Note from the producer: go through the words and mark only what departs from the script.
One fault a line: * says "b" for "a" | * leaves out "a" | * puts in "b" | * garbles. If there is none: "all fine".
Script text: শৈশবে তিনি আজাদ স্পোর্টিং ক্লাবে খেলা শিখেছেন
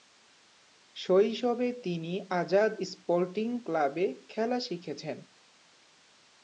all fine